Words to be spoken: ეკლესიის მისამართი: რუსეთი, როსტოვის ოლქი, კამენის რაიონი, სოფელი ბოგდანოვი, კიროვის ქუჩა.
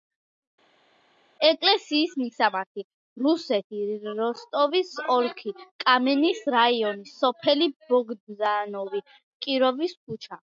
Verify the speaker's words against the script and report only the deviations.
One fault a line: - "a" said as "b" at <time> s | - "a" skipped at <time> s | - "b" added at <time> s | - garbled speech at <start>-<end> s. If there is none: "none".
none